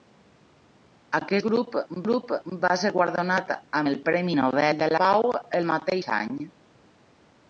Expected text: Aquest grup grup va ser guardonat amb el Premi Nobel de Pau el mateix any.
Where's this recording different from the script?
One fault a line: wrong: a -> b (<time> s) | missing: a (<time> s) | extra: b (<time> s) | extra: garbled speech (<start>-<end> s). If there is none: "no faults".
no faults